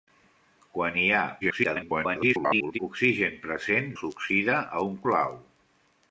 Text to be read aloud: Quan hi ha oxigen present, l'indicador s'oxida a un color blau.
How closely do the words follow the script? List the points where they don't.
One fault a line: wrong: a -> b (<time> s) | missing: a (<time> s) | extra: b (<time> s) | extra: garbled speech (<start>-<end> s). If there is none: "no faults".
extra: garbled speech (1.4-2.8 s)
missing: l'indicador (3.9 s)
missing: color (5.0 s)